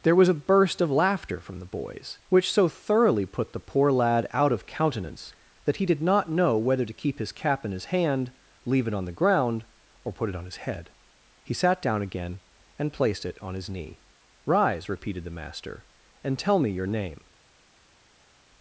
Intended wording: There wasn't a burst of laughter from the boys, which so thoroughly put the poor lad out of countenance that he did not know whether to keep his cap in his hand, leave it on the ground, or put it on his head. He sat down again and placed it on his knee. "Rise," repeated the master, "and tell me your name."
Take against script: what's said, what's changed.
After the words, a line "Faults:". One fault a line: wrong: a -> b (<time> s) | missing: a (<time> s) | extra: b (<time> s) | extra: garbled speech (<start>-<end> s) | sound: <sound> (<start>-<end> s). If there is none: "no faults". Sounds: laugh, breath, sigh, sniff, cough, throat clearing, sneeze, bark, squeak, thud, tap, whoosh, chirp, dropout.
There was a burst of laughter from the boys, which so thoroughly put the poor lad out of countenance that he did not know whether to keep his cap in his hand, leave it on the ground, or put it on his head. He sat down again and placed it on his knee. "Rise," repeated the master, "and tell me your name."
Faults:
wrong: wasn't -> was (0.1 s)